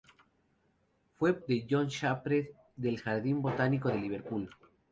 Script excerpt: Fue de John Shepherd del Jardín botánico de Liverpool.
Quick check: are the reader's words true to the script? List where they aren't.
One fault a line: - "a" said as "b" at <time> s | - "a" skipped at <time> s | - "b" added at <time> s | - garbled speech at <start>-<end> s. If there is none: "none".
none